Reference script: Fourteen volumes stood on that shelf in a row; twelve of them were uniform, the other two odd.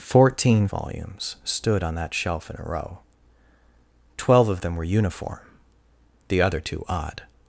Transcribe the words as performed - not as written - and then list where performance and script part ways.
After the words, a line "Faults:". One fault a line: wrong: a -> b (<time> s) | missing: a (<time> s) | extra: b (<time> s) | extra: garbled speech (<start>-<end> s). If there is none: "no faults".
Fourteen volumes stood on that shelf in a row; twelve of them were uniform, the other two odd.
Faults:
no faults